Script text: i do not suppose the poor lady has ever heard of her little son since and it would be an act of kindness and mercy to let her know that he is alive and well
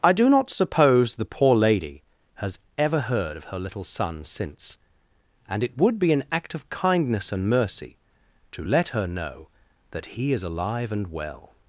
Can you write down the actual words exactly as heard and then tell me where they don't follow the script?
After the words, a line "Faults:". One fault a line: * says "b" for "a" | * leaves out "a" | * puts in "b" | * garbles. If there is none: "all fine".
i do not suppose the poor lady has ever heard of her little son since and it would be an act of kindness and mercy to let her know that he is alive and well
Faults:
all fine